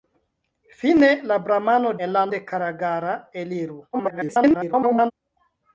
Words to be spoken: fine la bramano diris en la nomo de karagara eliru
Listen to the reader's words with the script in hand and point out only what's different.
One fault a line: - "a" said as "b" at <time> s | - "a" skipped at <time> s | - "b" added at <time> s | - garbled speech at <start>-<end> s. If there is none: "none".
- "diris" skipped at 1.9 s
- "nomo" skipped at 2.3 s
- garbled speech at 3.9-5.1 s